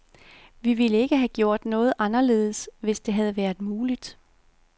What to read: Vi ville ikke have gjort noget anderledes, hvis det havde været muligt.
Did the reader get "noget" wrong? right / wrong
right